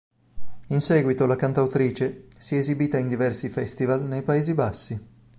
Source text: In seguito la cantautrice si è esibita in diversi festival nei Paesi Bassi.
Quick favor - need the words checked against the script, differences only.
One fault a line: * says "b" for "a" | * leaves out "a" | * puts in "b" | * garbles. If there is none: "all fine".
all fine